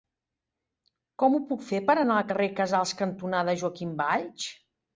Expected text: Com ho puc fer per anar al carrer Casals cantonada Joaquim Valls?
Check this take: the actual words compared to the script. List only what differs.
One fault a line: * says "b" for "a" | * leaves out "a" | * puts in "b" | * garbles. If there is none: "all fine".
all fine